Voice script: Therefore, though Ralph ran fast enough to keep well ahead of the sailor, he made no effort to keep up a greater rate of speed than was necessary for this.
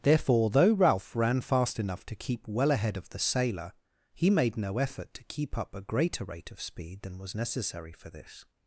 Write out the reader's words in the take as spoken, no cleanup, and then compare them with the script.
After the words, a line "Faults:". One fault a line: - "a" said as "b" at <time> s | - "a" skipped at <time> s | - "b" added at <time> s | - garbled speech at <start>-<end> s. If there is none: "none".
Therefore, though Ralph ran fast enough to keep well ahead of the sailor, he made no effort to keep up a greater rate of speed than was necessary for this.
Faults:
none